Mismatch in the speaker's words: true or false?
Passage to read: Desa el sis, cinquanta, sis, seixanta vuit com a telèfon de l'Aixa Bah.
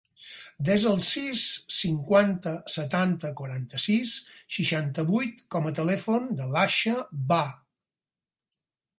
true